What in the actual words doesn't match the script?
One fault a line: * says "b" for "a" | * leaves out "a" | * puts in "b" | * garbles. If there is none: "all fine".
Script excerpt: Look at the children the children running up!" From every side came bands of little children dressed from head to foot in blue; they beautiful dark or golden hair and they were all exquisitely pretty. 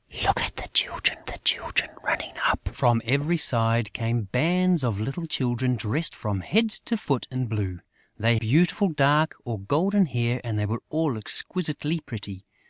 all fine